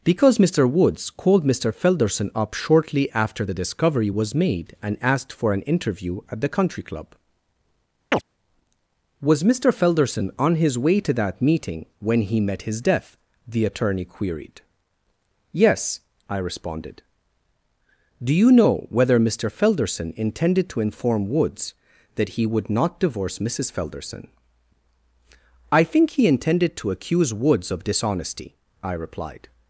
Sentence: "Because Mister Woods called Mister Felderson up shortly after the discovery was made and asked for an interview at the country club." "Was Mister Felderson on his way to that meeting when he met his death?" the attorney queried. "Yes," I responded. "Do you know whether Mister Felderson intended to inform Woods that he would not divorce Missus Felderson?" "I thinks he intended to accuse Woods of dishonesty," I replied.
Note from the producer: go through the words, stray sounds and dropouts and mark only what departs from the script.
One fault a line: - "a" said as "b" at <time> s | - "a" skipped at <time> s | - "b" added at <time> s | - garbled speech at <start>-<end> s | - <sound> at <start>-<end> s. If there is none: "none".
- chirp at 8.1-8.2 s
- "thinks" said as "think" at 25.8 s